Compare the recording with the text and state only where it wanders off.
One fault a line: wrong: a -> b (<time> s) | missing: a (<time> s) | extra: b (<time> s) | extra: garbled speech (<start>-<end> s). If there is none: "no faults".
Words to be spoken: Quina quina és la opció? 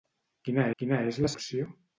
no faults